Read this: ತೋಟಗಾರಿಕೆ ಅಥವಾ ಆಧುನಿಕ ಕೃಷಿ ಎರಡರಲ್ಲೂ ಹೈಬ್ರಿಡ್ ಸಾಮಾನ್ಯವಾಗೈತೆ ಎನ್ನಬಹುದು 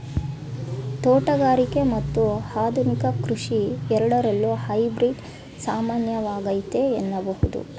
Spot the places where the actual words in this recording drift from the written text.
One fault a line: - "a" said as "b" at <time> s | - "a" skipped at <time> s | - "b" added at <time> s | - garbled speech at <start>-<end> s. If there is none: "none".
- "ಅಥವಾ" said as "ಮತ್ತು" at 1.9 s